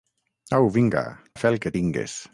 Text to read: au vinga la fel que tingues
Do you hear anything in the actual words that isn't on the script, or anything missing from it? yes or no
no